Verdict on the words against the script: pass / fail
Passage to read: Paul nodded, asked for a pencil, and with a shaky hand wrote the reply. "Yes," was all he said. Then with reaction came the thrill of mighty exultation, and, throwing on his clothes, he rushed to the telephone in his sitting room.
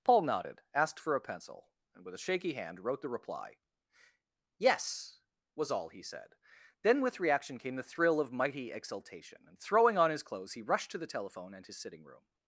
fail